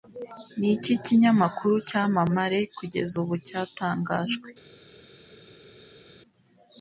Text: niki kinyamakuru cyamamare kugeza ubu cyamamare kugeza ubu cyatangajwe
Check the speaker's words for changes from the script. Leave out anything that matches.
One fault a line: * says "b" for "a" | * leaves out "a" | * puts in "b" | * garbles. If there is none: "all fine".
* leaves out "cyamamare kugeza ubu"